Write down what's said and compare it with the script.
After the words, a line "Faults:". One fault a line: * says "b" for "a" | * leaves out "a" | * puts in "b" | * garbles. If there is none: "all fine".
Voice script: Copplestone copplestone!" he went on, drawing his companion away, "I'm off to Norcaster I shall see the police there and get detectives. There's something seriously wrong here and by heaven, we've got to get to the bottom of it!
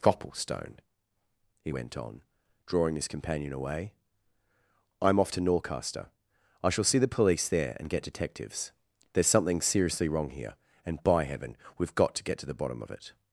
Copplestone!" he went on, drawing his companion away, "I'm off to Norcaster I shall see the police there and get detectives. There's something seriously wrong here and by heaven, we've got to get to the bottom of it!
Faults:
* leaves out "copplestone"